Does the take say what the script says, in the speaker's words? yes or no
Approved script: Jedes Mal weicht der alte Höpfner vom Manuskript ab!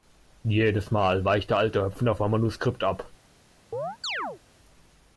yes